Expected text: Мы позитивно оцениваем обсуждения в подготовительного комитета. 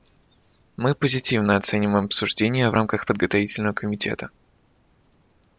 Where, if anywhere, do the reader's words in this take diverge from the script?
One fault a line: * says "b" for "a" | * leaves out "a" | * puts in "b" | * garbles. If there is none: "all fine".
* puts in "рамках"